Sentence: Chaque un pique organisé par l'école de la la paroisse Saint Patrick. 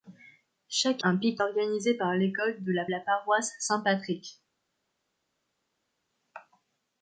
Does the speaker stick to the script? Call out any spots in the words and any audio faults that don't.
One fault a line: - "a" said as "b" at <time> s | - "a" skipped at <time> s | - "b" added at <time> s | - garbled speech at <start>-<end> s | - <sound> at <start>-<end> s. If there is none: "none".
none